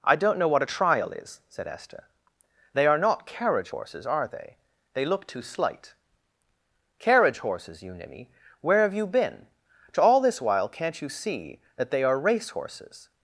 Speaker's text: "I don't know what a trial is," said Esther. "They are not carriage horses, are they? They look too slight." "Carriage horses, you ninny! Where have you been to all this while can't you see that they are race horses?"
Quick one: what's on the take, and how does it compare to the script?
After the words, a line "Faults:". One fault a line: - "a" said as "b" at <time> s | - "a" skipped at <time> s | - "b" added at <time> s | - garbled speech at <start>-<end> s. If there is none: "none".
"I don't know what a trial is," said Esther. "They are not carriage horses, are they? They look too slight." "Carriage horses, you ninny! Where have you been to all this while can't you see that they are race horses?"
Faults:
none